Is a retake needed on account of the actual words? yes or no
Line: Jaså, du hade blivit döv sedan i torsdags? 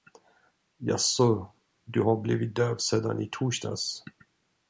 yes